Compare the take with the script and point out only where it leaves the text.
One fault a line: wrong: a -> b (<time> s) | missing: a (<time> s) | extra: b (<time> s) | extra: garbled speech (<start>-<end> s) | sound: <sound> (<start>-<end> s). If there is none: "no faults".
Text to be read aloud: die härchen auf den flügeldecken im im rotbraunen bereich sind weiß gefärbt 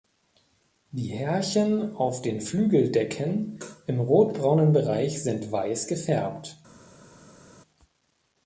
missing: im (4.0 s)